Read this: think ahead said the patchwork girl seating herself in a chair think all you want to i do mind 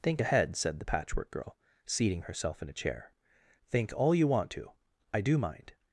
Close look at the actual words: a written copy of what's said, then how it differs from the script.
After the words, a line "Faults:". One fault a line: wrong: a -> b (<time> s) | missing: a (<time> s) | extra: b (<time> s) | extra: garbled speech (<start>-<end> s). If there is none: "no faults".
think ahead said the patchwork girl seating herself in a chair think all you want to i do mind
Faults:
no faults